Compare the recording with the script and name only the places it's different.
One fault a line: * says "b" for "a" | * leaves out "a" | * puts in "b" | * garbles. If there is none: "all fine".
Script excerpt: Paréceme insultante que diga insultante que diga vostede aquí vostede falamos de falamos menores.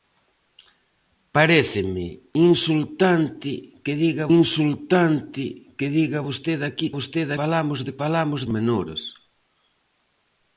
all fine